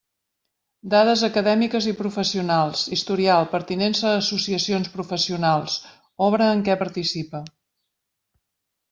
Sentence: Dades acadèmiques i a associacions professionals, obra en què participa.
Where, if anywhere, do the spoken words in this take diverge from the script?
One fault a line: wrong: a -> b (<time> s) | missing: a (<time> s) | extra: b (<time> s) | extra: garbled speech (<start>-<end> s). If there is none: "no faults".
extra: professionals historial pertinença (2.0 s)